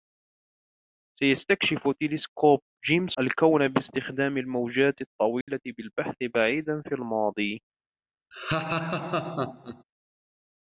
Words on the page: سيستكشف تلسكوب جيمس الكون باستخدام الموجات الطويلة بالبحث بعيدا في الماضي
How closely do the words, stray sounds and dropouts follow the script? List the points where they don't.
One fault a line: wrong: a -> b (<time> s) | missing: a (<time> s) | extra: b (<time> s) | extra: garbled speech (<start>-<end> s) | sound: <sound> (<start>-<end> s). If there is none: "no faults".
sound: dropout (5.4-5.5 s)
sound: laugh (8.3-9.8 s)